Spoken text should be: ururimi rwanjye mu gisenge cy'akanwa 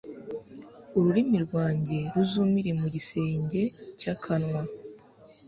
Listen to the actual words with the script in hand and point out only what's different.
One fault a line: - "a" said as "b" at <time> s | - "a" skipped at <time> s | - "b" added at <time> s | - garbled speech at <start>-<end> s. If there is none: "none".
- "ruzumire" added at 2.1 s